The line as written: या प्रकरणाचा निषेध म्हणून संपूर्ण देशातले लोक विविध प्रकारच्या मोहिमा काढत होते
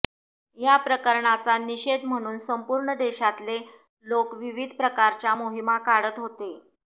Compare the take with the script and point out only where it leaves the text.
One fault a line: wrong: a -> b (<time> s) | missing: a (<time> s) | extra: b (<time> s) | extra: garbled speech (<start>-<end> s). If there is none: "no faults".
no faults